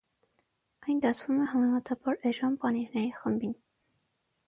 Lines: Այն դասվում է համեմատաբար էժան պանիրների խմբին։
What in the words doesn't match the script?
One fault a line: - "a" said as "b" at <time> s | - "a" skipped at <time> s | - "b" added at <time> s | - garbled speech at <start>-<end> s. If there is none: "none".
none